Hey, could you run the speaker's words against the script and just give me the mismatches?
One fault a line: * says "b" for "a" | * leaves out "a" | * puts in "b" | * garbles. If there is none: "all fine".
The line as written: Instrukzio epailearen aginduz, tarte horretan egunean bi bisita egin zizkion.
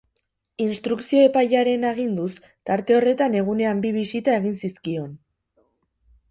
all fine